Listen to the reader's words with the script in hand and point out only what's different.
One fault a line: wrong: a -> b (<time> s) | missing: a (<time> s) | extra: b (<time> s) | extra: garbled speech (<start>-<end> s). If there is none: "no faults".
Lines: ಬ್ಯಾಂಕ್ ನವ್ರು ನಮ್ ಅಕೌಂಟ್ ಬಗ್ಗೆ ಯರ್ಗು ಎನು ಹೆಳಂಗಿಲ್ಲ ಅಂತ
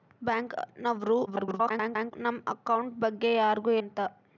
extra: garbled speech (1.3-2.1 s)
missing: ಎನು ಹೆಳಂಗಿಲ್ಲ (3.7 s)